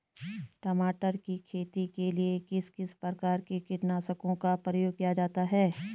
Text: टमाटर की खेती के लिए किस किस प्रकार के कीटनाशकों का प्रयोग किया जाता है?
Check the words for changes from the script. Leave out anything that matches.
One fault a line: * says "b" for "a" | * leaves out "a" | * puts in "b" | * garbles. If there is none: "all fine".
all fine